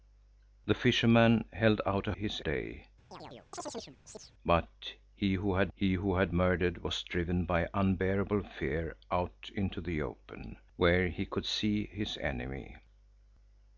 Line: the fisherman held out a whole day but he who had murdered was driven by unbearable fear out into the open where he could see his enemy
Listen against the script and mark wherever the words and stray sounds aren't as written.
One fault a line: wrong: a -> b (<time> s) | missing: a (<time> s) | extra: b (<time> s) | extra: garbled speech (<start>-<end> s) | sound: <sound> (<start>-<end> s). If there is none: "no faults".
wrong: whole -> his (2.1 s)
sound: chirp (3.1-4.3 s)
extra: he who had (5.7 s)